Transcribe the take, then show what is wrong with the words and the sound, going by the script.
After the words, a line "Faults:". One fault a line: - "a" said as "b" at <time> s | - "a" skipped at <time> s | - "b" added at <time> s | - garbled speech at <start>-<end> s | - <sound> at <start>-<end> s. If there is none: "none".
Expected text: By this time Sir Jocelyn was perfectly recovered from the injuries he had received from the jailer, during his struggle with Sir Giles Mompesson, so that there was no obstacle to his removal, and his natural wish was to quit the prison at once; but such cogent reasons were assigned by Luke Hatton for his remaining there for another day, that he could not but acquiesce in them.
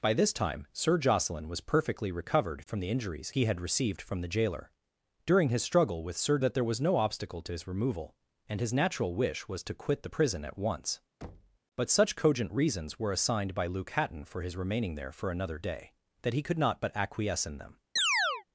By this time Sir Jocelyn was perfectly recovered from the injuries he had received from the jailer, during his struggle with Sir That there was no obstacle to his removal, and his natural wish was to quit the prison at once; but such cogent reasons were assigned by Luke Hatton for his remaining there for another day, that he could not but acquiesce in them.
Faults:
- "Giles Mompesson so" skipped at 6.4 s
- thud at 11.2-11.6 s
- chirp at 18.0-18.4 s